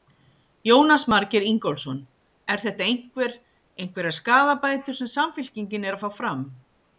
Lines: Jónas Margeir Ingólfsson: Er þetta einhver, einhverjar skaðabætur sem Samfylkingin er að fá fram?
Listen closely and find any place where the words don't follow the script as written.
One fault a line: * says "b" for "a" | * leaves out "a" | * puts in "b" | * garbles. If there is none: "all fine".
all fine